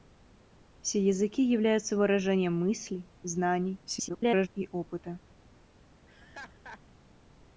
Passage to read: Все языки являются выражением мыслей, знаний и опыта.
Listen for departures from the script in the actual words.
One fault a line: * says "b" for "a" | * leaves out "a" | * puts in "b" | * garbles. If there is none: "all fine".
* garbles